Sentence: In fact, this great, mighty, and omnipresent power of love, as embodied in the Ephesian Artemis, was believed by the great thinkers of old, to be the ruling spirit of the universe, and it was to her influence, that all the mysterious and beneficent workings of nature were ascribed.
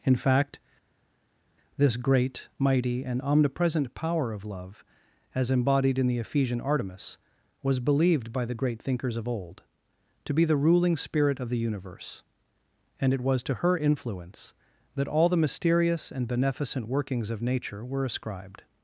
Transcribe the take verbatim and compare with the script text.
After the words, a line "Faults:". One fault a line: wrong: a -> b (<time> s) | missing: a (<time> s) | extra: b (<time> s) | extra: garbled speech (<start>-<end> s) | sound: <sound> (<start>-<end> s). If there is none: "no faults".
In fact, this great, mighty, and omnipresent power of love, as embodied in the Ephesian Artemis, was believed by the great thinkers of old, to be the ruling spirit of the universe, and it was to her influence, that all the mysterious and beneficent workings of nature were ascribed.
Faults:
no faults